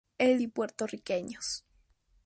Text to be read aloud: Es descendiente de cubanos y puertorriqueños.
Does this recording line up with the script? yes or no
no